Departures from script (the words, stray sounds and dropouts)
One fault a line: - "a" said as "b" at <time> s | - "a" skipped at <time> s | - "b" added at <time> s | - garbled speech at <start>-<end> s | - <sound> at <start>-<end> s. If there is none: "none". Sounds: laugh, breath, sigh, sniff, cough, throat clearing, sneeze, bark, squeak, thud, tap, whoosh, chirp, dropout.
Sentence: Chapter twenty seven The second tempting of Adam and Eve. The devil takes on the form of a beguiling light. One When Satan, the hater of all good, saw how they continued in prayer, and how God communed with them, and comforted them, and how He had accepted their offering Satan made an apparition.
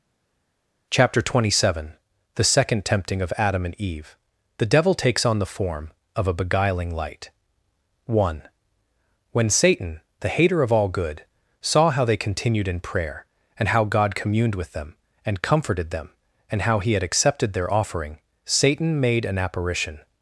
none